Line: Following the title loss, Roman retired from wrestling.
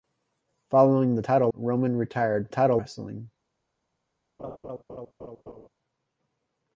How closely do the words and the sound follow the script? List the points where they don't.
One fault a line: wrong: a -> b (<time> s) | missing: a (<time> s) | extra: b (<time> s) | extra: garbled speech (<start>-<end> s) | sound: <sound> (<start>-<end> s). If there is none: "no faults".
missing: loss (1.5 s)
wrong: from -> title (2.5 s)
sound: laugh (4.4-5.7 s)